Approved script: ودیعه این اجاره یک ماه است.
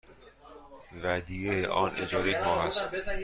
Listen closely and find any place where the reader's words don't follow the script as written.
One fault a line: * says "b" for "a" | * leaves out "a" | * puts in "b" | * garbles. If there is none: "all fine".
* says "آن" for "این"